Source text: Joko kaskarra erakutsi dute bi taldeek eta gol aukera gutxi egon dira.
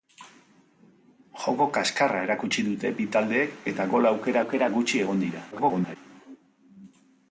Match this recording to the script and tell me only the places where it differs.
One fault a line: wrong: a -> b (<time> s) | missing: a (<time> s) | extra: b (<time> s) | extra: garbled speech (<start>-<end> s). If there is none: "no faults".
extra: aukera (4.4 s)
extra: garbled speech (5.5-6.0 s)